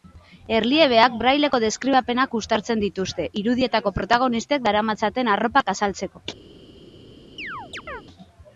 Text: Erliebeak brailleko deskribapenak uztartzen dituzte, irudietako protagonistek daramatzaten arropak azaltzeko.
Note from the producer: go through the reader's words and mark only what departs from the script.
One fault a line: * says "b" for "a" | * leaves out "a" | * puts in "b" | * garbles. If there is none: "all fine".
all fine